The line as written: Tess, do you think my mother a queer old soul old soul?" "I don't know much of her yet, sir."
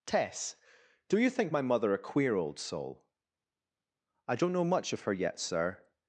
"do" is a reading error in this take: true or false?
false